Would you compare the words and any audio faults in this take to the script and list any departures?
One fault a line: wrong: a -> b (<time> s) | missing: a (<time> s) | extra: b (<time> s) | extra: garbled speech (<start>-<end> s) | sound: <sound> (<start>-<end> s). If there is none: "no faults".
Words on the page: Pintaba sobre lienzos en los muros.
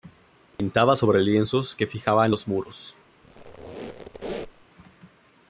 sound: dropout (0.5-0.6 s)
extra: que fijaba (1.8 s)
sound: squeak (3.2-4.7 s)